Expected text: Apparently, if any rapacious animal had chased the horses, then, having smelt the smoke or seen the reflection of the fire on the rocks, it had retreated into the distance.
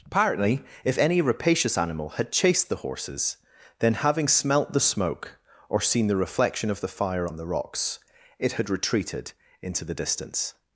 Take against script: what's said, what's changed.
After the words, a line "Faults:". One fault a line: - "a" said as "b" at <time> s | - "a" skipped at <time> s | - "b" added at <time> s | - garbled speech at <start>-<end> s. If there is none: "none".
Apparently, if any rapacious animal had chased the horses, then, having smelt the smoke or seen the reflection of the fire on the rocks, it had retreated into the distance.
Faults:
none